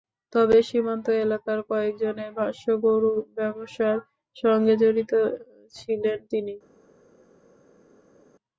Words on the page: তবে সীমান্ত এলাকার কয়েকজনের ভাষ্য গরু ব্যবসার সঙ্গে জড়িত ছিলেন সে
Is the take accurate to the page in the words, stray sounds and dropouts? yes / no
no